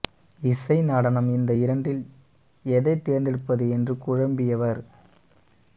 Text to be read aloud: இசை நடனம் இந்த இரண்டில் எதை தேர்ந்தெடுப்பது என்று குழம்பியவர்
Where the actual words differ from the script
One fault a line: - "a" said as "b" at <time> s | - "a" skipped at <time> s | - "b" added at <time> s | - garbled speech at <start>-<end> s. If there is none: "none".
none